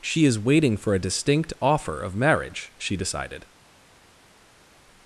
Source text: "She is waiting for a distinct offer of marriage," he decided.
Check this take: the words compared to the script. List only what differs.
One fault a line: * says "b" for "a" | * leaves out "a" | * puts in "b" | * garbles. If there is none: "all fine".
* says "she" for "he"